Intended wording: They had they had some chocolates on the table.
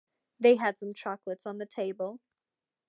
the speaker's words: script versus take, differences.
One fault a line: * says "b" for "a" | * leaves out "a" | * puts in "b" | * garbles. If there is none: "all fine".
* leaves out "they had"